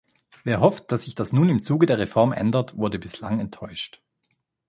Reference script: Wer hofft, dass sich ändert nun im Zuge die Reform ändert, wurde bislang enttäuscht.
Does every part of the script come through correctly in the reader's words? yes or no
no